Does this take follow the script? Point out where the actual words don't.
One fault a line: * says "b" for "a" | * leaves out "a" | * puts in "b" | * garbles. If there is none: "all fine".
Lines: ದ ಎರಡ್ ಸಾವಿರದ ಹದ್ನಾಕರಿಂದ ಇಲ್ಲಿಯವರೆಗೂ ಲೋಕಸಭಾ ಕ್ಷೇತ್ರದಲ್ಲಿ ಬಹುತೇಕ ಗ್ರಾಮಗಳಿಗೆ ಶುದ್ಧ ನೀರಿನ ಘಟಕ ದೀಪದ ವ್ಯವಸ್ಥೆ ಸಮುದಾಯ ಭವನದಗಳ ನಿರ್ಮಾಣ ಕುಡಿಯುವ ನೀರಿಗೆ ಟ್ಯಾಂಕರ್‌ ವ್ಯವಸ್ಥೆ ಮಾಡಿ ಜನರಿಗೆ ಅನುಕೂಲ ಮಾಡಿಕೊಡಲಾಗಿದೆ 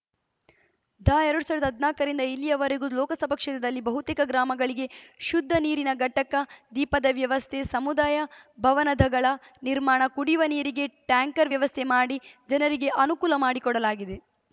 all fine